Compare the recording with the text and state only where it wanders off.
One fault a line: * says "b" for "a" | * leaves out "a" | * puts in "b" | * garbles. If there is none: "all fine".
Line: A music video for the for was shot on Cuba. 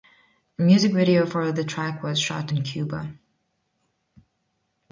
* says "track" for "for"
* says "in" for "on"